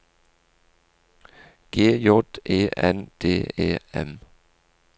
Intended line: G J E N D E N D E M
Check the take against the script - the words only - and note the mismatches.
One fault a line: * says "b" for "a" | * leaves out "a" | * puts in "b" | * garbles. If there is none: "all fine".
* leaves out "N D E"